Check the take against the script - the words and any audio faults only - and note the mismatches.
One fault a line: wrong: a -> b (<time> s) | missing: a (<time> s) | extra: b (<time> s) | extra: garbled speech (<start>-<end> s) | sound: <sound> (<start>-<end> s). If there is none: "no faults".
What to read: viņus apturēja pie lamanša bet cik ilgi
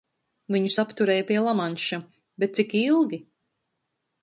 no faults